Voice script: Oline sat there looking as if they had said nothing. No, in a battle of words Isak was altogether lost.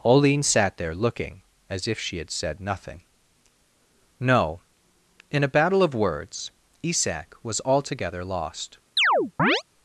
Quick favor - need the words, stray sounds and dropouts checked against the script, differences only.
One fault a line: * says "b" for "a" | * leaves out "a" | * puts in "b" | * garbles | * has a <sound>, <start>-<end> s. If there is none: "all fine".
* says "she" for "they"
* has a chirp, 9.0-9.6 s